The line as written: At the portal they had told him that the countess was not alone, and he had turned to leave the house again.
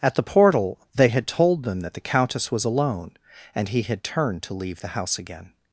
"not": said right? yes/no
no